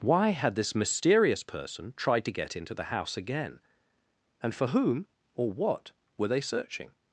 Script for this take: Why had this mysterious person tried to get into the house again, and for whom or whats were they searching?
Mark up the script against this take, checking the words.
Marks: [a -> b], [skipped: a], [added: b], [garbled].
Why had this mysterious person tried to get into the house again, and for whom or [whats -> what] were they searching?